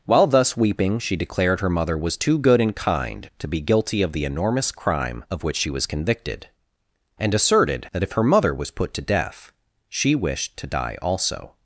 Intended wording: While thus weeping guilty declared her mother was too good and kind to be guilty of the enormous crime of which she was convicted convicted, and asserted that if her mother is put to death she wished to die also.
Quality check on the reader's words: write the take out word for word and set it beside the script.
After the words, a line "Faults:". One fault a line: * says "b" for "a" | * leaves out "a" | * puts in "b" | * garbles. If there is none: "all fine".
While thus weeping she declared her mother was too good and kind to be guilty of the enormous crime of which she was convicted, and asserted that if her mother was put to death she wished to die also.
Faults:
* says "she" for "guilty"
* leaves out "convicted"
* says "was" for "is"